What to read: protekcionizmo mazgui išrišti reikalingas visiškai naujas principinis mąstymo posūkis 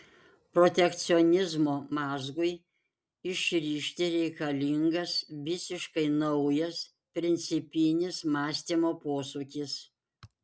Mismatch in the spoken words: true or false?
false